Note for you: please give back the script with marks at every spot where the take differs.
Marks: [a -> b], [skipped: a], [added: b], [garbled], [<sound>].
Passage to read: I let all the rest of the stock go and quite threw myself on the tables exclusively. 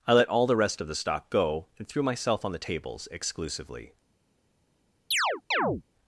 I let all the rest of the stock go and [skipped: quite] threw myself on the tables exclusively. [chirp]